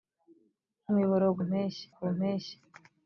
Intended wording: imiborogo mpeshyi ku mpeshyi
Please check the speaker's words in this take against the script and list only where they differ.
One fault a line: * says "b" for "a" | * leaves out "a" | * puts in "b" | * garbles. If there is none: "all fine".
all fine